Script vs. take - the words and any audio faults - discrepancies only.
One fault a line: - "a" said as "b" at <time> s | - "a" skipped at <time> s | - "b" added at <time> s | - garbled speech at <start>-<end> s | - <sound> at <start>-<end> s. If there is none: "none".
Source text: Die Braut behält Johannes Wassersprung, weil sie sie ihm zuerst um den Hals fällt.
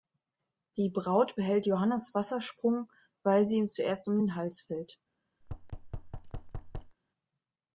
- "sie" skipped at 3.6 s
- thud at 5.4-7.0 s